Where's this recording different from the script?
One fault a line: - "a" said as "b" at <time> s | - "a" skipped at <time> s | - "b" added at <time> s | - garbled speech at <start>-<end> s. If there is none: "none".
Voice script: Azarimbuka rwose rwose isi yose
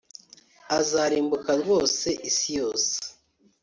- "rwose" skipped at 2.1 s